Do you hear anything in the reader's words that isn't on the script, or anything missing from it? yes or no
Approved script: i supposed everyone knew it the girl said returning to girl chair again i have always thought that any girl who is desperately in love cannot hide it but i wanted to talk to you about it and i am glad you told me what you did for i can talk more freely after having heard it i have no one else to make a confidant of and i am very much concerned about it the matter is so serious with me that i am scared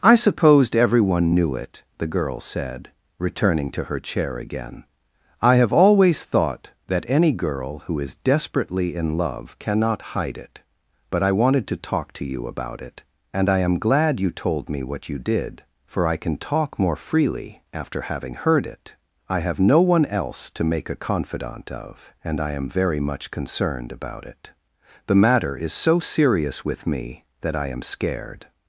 yes